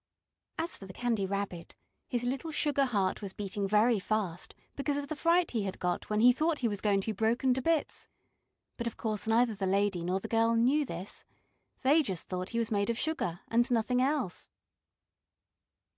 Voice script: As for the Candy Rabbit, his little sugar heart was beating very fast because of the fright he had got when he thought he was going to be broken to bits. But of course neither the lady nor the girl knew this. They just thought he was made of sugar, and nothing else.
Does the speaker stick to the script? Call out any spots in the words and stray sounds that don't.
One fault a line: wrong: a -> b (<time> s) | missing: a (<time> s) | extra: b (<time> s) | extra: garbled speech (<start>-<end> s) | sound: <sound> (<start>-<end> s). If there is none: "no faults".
no faults